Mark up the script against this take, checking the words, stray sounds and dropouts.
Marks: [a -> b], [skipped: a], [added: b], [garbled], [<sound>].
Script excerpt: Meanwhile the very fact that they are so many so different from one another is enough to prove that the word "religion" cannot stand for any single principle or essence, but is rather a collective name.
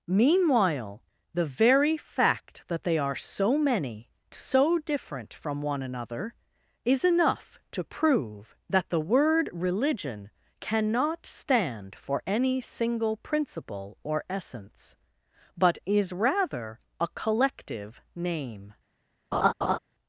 Meanwhile the very fact that they are so many so different from one another is enough to prove that the word "religion" cannot stand for any single principle or essence, but is rather a collective name. [laugh]